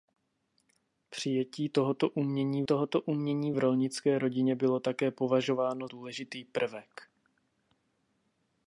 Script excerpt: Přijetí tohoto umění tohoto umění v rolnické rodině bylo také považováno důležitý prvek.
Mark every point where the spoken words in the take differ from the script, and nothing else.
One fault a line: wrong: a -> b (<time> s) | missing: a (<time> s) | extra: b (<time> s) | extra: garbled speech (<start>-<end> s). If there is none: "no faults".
no faults